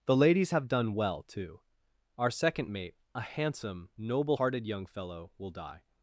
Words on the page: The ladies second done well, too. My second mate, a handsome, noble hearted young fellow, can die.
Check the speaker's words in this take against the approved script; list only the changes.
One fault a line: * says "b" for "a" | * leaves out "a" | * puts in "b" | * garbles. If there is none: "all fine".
* says "have" for "second"
* says "Our" for "My"
* says "will" for "can"